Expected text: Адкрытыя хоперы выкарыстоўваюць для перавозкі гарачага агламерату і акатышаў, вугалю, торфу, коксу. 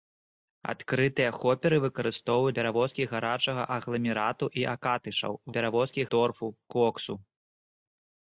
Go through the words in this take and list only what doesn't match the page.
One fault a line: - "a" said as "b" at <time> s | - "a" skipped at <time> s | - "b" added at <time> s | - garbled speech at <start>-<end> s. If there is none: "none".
- "для" skipped at 2.5 s
- "вугалю" said as "перавозкі" at 5.6 s